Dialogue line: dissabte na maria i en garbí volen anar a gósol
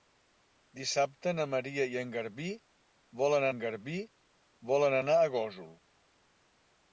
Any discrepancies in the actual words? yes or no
yes